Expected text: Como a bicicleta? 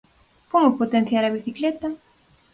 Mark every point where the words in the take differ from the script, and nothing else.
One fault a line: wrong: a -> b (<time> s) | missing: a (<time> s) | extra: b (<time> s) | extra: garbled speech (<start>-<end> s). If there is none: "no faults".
extra: potenciar (0.8 s)